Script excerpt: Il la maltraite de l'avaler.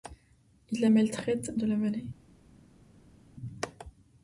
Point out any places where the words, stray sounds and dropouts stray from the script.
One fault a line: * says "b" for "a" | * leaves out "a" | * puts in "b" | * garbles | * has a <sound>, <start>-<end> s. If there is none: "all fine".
all fine